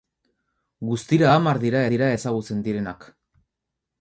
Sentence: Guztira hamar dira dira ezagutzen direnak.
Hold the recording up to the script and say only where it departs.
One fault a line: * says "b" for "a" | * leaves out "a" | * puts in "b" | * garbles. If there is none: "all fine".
all fine